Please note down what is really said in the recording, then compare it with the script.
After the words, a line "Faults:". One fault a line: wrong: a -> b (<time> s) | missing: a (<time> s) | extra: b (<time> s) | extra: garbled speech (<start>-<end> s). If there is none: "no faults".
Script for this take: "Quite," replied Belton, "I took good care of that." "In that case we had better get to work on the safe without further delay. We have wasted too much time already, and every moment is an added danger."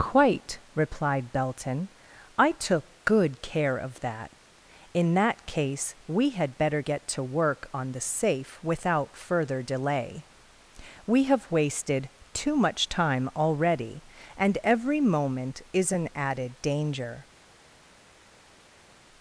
"Quite," replied Belton, "I took good care of that." "In that case we had better get to work on the safe without further delay. We have wasted too much time already, and every moment is an added danger."
Faults:
no faults